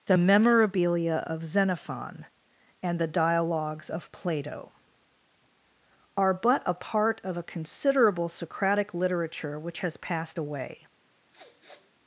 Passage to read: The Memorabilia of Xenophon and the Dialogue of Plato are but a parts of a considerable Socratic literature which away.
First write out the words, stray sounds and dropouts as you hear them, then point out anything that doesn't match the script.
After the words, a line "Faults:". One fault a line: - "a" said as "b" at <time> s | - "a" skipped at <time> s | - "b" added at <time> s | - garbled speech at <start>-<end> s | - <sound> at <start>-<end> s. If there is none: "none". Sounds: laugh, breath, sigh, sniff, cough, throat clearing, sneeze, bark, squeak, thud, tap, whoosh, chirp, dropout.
The Memorabilia of Xenophon and the Dialogues of Plato are but a part of a considerable Socratic literature which has passed away.
Faults:
- "Dialogue" said as "Dialogues" at 3.1 s
- "parts" said as "part" at 6.8 s
- "has passed" added at 9.8 s
- sniff at 11.3-11.9 s